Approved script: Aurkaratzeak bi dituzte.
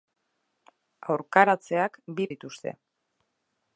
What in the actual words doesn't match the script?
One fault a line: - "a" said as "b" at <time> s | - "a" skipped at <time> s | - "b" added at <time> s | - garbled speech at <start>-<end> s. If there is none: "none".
none